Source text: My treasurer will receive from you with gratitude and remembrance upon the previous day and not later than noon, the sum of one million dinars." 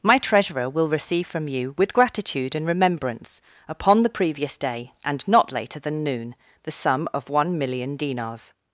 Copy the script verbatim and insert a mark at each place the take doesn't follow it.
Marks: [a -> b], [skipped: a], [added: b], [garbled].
My treasurer will receive from you with gratitude and remembrance upon the previous day and not later than noon, the sum of one million dinars."